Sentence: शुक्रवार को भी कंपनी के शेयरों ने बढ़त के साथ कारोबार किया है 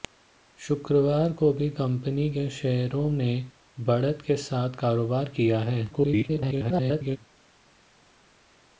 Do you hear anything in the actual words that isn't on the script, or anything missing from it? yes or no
yes